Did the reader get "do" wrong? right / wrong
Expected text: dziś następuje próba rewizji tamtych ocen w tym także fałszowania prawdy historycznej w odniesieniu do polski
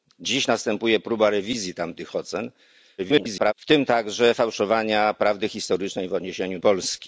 wrong